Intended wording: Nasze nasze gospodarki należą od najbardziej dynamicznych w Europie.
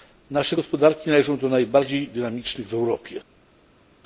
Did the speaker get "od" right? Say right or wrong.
wrong